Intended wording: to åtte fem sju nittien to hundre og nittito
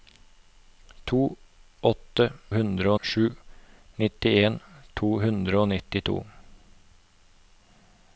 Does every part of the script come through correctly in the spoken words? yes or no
no